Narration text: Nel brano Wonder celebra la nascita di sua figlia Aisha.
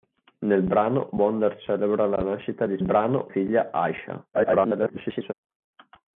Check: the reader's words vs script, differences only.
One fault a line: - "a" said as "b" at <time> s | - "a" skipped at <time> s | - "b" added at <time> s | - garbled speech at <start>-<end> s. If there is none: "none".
- "sua" said as "brano" at 2.8 s
- garbled speech at 4.3-5.3 s